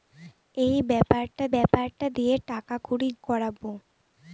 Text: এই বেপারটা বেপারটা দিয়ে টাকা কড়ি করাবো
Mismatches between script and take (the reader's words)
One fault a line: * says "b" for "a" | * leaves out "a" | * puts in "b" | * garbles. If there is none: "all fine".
all fine